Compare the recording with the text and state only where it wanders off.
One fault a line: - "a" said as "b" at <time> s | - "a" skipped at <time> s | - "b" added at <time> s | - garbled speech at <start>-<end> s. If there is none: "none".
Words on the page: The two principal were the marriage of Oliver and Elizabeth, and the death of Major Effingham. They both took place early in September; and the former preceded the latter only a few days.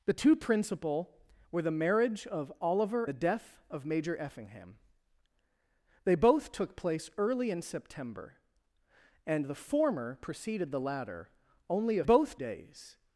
- "and Elizabeth and" skipped at 3.0 s
- "few" said as "both" at 12.0 s